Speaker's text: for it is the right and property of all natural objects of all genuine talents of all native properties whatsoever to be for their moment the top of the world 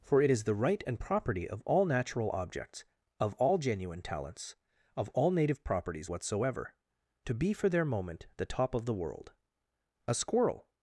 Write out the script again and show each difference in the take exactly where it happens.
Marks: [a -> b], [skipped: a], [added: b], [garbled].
for it is the right and property of all natural objects of all genuine talents of all native properties whatsoever to be for their moment the top of the world [added: a squirrel]